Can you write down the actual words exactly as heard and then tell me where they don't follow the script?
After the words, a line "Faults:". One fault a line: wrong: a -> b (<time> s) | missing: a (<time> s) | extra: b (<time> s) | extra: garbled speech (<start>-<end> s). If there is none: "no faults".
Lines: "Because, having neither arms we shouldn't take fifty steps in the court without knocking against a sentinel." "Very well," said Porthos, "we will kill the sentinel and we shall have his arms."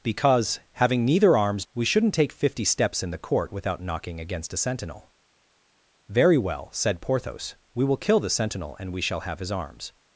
"Because, having neither arms we shouldn't take fifty steps in the court without knocking against a sentinel." "Very well," said Porthos, "we will kill the sentinel and we shall have his arms."
Faults:
no faults